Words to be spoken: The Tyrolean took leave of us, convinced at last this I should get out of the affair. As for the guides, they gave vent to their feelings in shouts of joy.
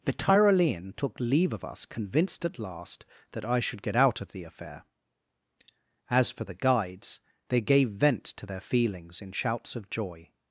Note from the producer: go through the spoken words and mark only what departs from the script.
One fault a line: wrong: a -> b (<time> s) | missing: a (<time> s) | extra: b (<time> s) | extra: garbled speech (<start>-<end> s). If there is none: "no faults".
wrong: this -> that (3.3 s)